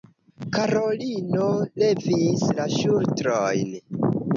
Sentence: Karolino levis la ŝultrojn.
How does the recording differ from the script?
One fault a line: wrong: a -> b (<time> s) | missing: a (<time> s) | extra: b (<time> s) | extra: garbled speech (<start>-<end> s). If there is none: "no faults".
no faults